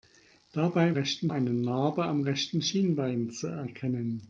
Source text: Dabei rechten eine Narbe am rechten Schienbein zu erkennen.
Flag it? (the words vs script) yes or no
no